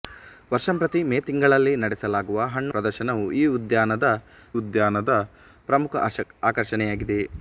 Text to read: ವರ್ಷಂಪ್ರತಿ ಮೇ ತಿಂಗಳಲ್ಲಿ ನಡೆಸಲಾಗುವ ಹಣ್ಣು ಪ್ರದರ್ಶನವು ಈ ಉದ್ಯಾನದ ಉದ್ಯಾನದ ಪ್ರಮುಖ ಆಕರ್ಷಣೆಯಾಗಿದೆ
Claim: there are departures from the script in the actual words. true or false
false